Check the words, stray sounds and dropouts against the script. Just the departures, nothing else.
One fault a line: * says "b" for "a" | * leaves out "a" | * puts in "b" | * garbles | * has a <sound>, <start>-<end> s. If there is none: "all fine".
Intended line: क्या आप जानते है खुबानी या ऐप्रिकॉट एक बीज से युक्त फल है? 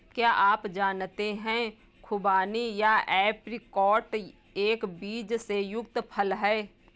all fine